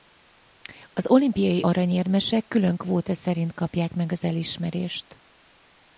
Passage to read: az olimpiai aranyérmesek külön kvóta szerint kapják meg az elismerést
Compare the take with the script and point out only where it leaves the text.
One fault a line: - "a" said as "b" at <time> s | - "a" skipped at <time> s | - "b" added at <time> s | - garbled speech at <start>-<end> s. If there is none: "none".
none